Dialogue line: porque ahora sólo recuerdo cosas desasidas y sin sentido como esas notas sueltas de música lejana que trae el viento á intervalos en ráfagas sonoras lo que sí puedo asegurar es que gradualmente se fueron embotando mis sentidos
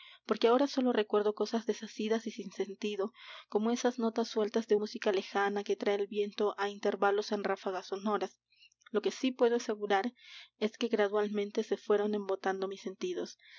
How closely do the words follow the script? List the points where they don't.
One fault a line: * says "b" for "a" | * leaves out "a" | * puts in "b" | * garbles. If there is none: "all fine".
all fine